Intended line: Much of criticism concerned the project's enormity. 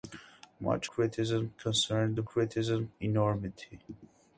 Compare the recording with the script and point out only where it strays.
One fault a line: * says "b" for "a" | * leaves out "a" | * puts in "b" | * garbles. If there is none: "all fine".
* leaves out "of"
* says "criticism" for "project's"